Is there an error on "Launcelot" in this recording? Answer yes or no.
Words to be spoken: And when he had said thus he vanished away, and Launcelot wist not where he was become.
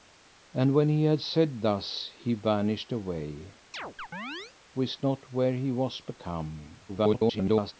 yes